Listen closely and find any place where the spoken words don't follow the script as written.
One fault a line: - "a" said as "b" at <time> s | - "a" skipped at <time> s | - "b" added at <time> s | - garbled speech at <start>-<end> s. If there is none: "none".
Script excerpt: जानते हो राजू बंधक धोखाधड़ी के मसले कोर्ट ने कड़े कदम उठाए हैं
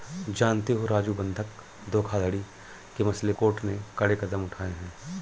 none